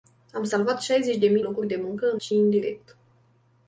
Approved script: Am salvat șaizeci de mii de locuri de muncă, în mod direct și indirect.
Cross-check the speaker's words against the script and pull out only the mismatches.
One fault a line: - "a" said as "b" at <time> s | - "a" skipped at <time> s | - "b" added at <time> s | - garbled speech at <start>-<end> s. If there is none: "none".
- "de" skipped at 1.4 s
- "mod direct" skipped at 2.2 s